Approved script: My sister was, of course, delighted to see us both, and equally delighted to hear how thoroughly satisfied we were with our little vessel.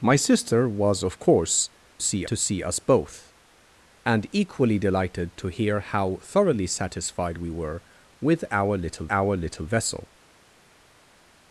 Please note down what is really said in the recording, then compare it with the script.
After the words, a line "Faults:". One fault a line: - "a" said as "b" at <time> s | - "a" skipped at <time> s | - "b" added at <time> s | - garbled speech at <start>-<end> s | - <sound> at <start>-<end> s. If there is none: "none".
My sister was, of course, see to see us both, and equally delighted to hear how thoroughly satisfied we were with our little our little vessel.
Faults:
- "delighted" said as "see" at 2.0 s
- "our little" added at 9.1 s